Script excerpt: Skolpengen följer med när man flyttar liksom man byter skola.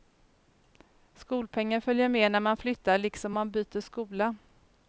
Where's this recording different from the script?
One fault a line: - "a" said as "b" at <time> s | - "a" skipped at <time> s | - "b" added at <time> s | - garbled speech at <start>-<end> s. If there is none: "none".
none